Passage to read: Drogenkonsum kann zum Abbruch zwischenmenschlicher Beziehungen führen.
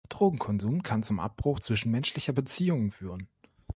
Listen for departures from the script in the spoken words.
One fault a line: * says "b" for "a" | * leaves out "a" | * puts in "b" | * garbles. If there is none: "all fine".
all fine